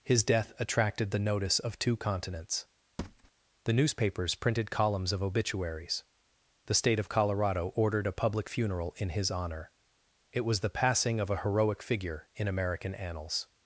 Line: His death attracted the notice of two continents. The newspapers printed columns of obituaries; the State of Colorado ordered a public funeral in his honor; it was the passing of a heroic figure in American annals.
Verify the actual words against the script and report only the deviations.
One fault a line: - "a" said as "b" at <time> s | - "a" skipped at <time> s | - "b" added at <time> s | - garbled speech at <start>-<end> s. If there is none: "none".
none